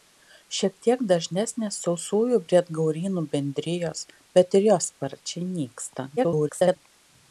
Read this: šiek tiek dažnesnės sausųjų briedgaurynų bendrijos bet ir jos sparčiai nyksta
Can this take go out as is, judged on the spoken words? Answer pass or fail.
fail